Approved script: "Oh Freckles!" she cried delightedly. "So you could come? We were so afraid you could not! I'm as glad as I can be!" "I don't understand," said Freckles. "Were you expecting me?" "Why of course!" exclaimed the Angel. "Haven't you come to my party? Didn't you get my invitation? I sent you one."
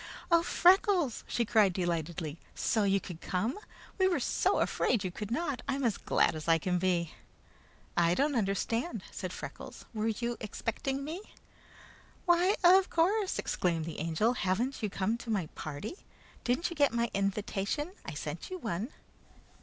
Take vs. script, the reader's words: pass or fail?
pass